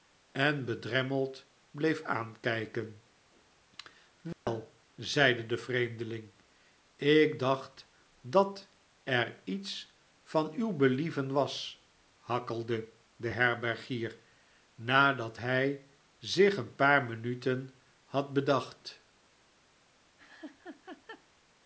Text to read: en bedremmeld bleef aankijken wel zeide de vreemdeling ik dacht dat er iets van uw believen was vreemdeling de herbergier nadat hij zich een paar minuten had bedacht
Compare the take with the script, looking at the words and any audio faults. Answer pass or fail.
fail